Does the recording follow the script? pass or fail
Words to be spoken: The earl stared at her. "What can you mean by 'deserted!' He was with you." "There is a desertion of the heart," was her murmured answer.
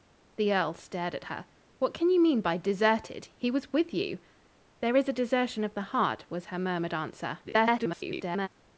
fail